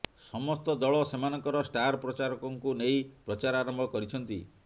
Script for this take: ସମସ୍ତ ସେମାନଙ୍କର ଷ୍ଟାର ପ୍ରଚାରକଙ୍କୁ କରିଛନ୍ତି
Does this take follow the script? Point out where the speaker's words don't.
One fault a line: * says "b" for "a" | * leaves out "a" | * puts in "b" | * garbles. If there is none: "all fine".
* puts in "ଦଳ"
* puts in "ନେଇ ପ୍ରଚାର ଆରମ୍ଭ"